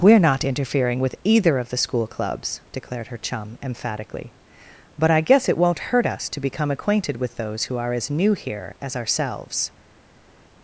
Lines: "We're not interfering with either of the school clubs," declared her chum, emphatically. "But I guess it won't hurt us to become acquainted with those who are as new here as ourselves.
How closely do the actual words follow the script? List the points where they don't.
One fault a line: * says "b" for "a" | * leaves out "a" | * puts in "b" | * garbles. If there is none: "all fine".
all fine